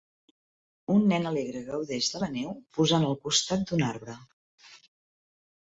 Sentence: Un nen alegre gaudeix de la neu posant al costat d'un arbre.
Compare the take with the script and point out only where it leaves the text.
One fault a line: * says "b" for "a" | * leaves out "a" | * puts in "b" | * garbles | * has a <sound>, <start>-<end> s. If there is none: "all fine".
all fine